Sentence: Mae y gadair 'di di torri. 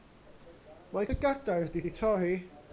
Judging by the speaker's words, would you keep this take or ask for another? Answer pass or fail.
pass